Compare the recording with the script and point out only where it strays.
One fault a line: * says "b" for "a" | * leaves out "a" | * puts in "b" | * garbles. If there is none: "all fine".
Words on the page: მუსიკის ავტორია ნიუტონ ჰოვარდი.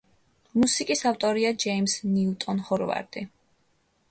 * puts in "ჯეიმზ"